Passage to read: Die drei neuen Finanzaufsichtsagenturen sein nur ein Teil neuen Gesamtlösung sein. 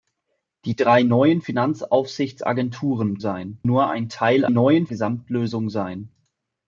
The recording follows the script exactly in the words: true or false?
true